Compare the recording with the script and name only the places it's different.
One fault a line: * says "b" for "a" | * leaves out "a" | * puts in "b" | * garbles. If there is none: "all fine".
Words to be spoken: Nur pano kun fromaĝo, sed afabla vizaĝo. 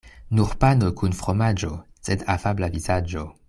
all fine